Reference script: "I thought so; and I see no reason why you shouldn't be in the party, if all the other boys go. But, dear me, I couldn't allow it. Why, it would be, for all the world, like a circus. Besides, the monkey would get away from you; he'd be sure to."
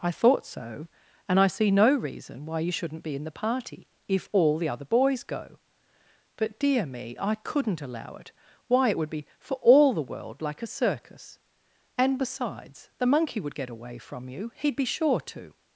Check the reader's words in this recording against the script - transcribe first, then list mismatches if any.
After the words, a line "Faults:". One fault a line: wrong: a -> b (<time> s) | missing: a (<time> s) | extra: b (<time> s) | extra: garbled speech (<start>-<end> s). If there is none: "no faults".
"I thought so; and I see no reason why you shouldn't be in the party, if all the other boys go. But, dear me, I couldn't allow it. Why, it would be, for all the world, like a circus. And, besides, the monkey would get away from you; he'd be sure to."
Faults:
extra: And (12.0 s)